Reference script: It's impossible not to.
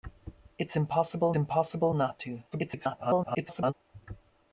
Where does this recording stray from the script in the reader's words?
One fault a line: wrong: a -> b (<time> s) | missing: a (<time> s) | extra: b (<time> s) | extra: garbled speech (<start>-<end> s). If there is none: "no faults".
extra: impossible (1.3 s)
extra: garbled speech (2.5-3.7 s)